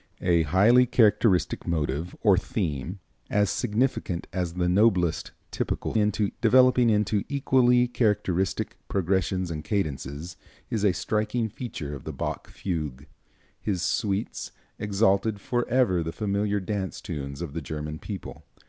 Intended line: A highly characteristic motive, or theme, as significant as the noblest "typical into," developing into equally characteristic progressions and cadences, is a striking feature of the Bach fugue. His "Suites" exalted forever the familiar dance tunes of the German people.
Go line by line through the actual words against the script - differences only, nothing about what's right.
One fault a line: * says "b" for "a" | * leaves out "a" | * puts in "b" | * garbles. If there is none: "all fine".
all fine